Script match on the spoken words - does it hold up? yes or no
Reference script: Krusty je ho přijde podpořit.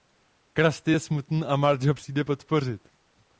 no